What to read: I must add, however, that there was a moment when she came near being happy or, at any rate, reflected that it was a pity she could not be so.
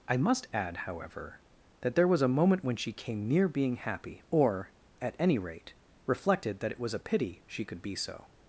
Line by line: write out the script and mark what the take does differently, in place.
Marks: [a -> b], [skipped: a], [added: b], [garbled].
I must add, however, that there was a moment when she came near being happy or, at any rate, reflected that it was a pity she could [skipped: not] be so.